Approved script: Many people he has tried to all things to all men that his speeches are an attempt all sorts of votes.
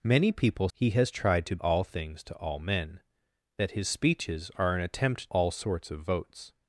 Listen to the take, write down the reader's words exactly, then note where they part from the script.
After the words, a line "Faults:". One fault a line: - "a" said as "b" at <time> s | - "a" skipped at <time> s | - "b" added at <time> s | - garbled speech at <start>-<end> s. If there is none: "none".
Many people he has tried to all things to all men that his speeches are an attempt all sorts of votes.
Faults:
none